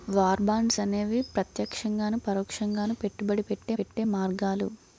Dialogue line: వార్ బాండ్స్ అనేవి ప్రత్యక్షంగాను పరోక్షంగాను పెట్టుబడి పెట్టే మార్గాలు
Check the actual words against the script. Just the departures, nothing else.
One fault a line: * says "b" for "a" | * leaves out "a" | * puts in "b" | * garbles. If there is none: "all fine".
* puts in "పెట్టే"